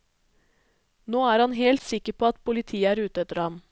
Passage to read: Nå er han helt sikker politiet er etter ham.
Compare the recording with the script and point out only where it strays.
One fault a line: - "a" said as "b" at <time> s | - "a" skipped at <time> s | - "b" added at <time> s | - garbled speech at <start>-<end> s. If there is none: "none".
- "på at" added at 2.2 s
- "ute" added at 3.1 s